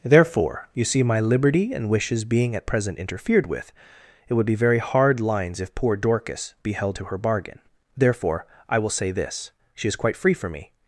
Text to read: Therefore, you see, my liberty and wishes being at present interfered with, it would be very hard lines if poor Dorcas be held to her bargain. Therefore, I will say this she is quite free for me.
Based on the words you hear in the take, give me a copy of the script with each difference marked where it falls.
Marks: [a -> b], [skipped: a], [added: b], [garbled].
Therefore, you see, my liberty and wishes being at present interfered with, it would be very hard lines if poor Dorcas be held to her bargain. Therefore, I will say this she is quite free for me.